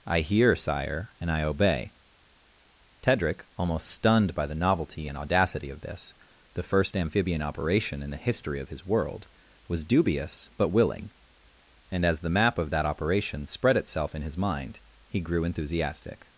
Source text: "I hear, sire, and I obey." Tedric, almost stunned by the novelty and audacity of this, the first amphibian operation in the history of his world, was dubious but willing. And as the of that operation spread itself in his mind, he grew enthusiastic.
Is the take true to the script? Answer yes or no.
no